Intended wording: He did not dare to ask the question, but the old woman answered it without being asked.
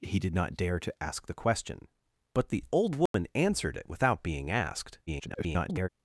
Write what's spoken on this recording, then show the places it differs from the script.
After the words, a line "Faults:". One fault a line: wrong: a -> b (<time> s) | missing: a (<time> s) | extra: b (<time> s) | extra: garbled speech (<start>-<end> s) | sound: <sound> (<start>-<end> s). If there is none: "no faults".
He did not dare to ask the question, but the old woman answered it without being asked. [garbled]
Faults:
sound: dropout (3.1-3.1 s)
extra: garbled speech (5.1-5.9 s)